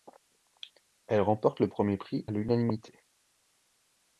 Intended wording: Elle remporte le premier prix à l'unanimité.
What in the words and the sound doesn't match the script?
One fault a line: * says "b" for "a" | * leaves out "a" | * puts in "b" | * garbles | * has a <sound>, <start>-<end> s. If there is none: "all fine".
* leaves out "à"